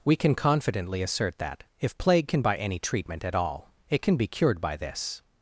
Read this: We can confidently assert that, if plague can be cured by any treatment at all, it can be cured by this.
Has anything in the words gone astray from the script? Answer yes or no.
yes